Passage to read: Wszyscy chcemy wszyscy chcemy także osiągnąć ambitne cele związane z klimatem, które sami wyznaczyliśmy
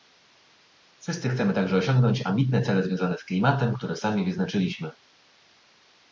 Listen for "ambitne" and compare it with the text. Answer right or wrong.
right